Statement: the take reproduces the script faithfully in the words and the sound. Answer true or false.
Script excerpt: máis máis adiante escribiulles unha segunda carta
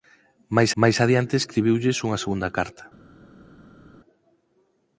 true